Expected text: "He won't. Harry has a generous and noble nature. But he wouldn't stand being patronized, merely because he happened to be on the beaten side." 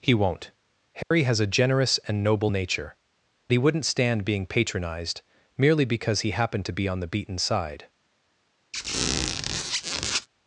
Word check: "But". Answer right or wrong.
wrong